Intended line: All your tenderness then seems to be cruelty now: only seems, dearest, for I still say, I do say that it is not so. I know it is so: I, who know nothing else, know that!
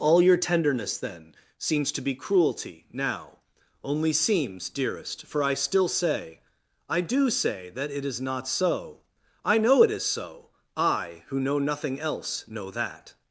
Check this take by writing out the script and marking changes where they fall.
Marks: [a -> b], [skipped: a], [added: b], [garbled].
All your tenderness then seems to be cruelty now: only seems, dearest, for I still say, I do say that it is not so. I know it is so: I, who know nothing else, know that!